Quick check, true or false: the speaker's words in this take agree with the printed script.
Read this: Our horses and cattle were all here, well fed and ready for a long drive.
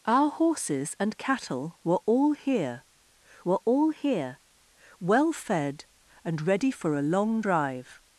false